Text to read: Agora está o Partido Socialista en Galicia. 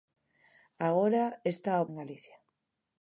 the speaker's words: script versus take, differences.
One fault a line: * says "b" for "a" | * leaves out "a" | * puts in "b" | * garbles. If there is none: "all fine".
* leaves out "Partido Socialista"